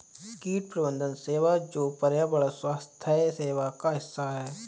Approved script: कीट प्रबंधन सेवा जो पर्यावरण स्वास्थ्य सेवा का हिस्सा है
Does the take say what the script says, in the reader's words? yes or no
yes